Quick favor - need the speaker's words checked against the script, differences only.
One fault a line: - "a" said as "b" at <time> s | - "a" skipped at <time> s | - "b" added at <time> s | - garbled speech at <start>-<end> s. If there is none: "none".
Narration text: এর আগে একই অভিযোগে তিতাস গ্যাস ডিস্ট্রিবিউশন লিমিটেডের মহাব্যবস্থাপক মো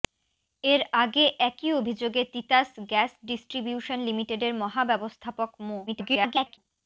- garbled speech at 5.9-6.6 s